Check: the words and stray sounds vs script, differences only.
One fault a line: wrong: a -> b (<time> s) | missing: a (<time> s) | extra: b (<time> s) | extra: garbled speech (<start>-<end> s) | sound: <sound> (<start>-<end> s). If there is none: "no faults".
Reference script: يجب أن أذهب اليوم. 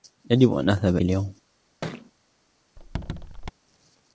sound: thud (1.8-2.1 s)
sound: squeak (2.8-3.5 s)